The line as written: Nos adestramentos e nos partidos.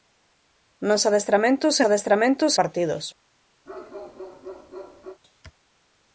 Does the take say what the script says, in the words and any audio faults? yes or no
no